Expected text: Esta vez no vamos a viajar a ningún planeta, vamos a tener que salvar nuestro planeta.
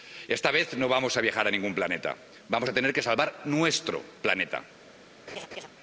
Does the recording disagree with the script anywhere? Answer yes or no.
no